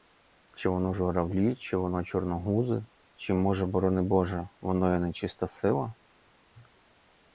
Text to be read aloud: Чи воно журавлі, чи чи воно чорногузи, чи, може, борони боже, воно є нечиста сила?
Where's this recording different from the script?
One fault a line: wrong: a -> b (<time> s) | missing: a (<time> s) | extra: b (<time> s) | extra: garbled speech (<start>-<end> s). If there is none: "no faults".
missing: чи (1.8 s)